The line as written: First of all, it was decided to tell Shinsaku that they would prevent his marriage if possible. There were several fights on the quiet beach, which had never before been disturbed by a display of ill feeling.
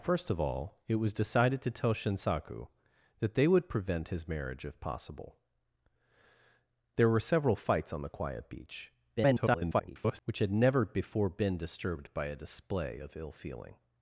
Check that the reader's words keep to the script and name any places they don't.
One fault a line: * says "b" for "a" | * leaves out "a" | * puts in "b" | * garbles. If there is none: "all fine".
* garbles